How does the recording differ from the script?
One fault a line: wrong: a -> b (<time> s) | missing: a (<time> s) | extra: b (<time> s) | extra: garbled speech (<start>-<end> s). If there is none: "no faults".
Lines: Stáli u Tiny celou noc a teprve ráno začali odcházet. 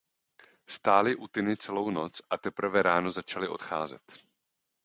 no faults